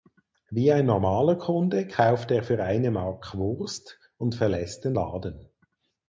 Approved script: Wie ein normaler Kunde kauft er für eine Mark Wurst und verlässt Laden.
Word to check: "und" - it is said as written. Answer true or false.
true